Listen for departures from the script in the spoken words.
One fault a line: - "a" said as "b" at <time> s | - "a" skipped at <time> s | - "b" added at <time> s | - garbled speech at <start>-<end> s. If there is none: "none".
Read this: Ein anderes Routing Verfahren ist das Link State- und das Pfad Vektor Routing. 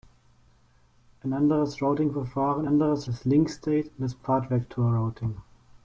- "ist" said as "anderes" at 2.6 s